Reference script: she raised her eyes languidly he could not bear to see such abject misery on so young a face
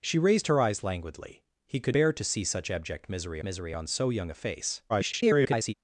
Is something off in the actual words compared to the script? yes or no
yes